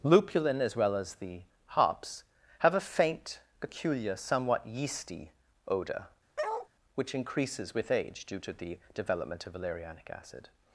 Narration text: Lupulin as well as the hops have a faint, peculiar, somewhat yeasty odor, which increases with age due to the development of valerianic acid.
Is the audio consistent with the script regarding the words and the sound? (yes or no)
no